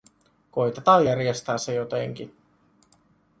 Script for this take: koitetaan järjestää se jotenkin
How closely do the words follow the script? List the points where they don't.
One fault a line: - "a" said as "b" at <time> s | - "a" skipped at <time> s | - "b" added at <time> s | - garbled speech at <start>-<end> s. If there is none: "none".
none